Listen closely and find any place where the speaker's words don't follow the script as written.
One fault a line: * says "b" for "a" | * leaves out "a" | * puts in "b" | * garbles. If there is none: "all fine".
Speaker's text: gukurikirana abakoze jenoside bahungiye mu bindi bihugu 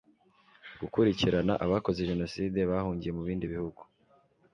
all fine